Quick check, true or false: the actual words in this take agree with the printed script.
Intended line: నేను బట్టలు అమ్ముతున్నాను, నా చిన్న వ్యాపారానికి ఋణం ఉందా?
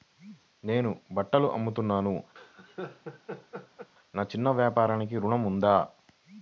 true